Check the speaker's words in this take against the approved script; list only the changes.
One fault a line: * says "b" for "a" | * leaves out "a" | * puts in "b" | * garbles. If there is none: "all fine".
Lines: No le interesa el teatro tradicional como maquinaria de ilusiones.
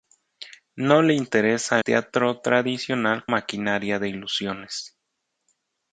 * leaves out "el"
* leaves out "como"